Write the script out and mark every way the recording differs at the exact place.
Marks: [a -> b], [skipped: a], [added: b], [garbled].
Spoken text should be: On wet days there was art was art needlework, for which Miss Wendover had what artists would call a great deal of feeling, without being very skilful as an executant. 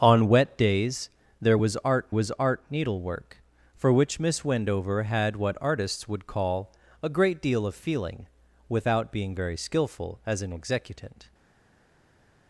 On wet days there was art was art needlework, for which Miss Wendover had what artists would call a great deal of feeling, without being very skilful as an executant.